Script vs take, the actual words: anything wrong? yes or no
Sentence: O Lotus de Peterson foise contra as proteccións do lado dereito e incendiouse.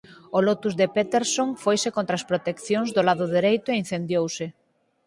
no